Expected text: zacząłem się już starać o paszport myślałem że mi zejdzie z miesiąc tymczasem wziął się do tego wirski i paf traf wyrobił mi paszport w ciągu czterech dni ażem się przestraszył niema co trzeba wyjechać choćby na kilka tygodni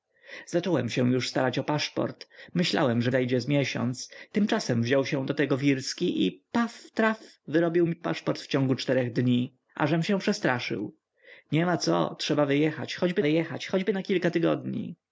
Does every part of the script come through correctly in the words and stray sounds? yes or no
no